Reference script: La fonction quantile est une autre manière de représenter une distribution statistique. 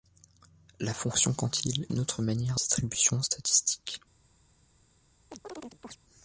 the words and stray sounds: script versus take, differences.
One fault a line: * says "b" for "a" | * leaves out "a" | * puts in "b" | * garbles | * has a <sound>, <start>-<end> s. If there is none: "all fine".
* leaves out "est"
* leaves out "de représenter une"
* has a chirp, 5.3-6.0 s